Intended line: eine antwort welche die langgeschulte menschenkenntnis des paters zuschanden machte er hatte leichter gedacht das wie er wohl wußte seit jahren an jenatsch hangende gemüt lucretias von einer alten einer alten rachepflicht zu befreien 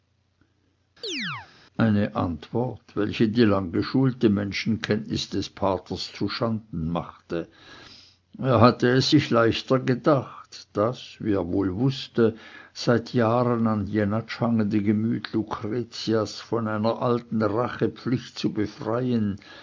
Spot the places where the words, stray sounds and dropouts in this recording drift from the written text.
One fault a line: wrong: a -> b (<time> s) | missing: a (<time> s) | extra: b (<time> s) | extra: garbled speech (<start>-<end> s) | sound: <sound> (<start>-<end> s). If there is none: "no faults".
sound: chirp (1.0-1.5 s)
extra: es sich (8.9 s)
missing: einer alten (17.4 s)